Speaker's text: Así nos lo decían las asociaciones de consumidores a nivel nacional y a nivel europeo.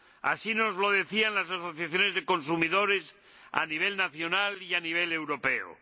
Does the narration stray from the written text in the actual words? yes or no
no